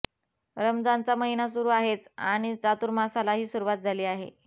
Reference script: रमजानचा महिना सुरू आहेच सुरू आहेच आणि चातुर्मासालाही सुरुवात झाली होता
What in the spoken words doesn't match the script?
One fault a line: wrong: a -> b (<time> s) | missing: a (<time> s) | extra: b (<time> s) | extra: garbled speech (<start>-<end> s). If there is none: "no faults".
missing: सुरू आहेच (2.1 s)
wrong: होता -> आहे (4.0 s)